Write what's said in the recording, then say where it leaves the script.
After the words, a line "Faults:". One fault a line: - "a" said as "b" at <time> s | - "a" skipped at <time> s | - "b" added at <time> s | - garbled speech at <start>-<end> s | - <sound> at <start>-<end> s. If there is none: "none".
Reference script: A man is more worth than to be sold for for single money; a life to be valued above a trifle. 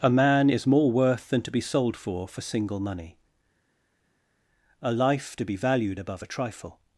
A man is more worth than to be sold for for single money; a life to be valued above a trifle.
Faults:
none